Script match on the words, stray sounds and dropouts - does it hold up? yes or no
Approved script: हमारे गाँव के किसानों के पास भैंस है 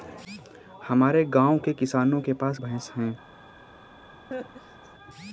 no